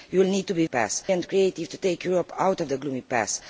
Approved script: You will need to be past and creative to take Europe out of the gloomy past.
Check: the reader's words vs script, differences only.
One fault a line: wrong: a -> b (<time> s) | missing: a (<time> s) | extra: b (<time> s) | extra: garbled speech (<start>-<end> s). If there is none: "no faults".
no faults